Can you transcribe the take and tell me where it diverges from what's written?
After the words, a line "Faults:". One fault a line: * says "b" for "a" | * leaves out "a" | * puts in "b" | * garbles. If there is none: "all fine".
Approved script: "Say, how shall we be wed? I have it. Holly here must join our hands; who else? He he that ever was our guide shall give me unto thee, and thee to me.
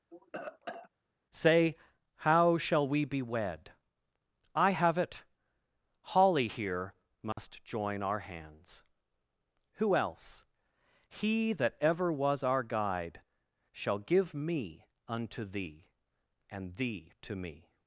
"Say, how shall we be wed? I have it. Holly here must join our hands; who else? He that ever was our guide shall give me unto thee, and thee to me.
Faults:
* leaves out "he"